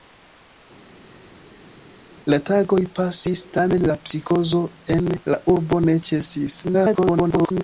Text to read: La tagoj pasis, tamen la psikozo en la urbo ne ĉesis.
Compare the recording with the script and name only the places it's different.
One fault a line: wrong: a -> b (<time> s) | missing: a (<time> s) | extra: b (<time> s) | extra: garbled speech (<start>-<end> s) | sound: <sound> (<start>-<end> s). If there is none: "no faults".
extra: garbled speech (6.6-7.6 s)